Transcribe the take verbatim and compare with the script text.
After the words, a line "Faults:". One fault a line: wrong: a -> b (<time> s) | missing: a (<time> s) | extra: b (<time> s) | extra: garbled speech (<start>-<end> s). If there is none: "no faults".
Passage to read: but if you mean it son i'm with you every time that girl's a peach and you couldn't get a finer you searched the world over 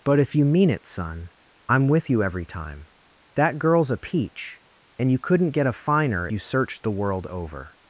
but if you mean it son i'm with you every time that girl's a peach and you couldn't get a finer you searched the world over
Faults:
no faults